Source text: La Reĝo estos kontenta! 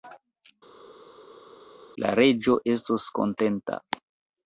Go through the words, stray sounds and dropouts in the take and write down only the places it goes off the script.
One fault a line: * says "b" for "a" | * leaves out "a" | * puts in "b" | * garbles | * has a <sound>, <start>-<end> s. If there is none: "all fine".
all fine